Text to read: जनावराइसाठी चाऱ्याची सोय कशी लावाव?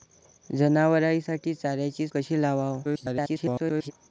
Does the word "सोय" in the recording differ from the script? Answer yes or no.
yes